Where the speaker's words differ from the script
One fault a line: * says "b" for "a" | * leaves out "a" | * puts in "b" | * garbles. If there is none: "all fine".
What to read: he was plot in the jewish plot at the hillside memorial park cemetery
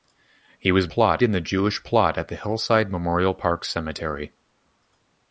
all fine